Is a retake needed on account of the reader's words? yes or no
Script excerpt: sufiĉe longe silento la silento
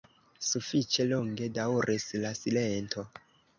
yes